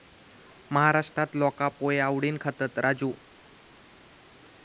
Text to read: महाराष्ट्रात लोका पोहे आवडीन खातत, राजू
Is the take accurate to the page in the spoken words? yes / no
yes